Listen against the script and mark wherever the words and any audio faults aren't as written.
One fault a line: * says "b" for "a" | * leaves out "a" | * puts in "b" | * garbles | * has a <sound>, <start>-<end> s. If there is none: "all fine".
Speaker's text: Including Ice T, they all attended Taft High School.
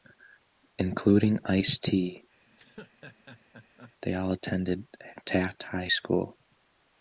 * has a laugh, 2.5-3.9 s